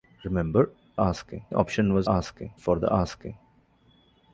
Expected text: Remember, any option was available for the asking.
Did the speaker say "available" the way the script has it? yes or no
no